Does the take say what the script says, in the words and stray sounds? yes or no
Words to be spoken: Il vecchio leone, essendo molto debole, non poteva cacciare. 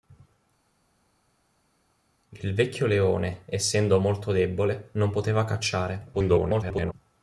no